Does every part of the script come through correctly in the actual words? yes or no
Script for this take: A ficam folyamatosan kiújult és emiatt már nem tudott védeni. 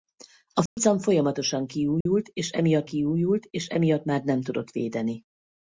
no